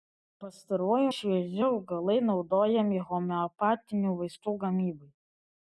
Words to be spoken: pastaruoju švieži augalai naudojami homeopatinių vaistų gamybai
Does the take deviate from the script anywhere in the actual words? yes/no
no